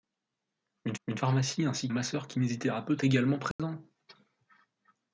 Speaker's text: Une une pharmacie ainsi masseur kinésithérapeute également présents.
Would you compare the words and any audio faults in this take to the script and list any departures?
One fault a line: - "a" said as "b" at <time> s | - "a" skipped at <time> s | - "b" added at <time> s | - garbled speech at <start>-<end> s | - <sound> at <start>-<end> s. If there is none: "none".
- dropout at 3.5-3.6 s